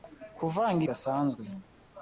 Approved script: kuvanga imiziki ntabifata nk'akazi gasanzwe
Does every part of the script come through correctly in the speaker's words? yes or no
no